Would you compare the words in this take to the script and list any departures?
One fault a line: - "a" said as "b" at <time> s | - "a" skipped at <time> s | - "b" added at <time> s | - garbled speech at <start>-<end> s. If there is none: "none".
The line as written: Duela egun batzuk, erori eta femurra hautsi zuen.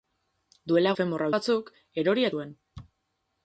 - "egun" said as "femurra" at 1.0 s
- "eta femurra hautsi" skipped at 2.3 s